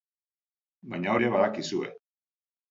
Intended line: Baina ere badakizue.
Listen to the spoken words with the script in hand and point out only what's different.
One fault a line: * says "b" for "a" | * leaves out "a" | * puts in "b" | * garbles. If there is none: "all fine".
all fine